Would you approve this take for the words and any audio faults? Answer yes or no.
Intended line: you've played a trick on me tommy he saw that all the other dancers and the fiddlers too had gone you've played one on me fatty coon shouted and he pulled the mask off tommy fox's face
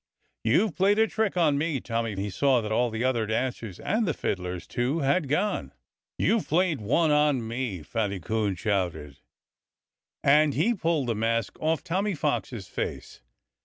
yes